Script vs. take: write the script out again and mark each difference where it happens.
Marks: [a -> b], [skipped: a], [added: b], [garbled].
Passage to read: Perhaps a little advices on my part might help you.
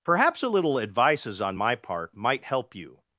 Perhaps a little advices on my part might help you.